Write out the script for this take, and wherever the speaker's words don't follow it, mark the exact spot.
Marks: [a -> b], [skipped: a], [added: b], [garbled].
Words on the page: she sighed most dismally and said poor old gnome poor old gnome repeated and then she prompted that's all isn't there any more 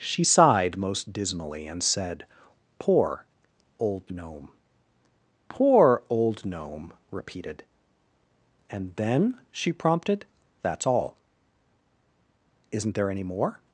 she sighed most dismally and said poor old gnome poor old gnome repeated and then she prompted that's all isn't there any more